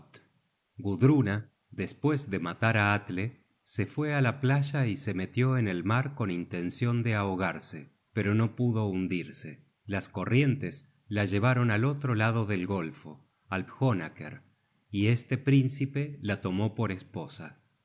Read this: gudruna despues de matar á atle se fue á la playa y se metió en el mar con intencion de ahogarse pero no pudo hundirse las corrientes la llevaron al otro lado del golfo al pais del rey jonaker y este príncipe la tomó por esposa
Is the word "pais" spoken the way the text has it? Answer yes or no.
no